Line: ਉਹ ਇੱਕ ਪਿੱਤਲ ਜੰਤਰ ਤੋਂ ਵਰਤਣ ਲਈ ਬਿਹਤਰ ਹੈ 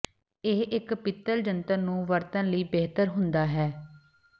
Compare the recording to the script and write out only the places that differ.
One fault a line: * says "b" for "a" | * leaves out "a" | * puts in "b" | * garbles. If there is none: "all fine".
* says "ਇਹ" for "ਉਹ"
* says "ਨੂੰ" for "ਤੋਂ"
* puts in "ਹੁੰਦਾ"